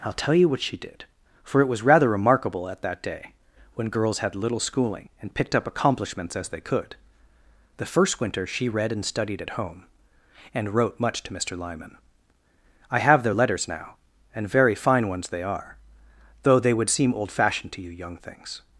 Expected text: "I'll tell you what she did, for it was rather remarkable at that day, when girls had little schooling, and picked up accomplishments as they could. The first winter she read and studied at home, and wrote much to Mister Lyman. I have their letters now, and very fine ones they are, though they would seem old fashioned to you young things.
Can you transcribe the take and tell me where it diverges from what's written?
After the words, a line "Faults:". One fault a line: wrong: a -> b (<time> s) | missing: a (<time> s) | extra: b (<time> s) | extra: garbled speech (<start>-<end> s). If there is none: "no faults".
"I'll tell you what she did, for it was rather remarkable at that day, when girls had little schooling, and picked up accomplishments as they could. The first winter she read and studied at home, and wrote much to Mister Lyman. I have their letters now, and very fine ones they are, though they would seem old fashioned to you young things.
Faults:
no faults